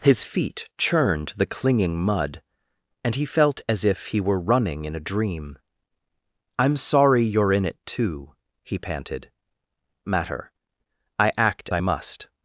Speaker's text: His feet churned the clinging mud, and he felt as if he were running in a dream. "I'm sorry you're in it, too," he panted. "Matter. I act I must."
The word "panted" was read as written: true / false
true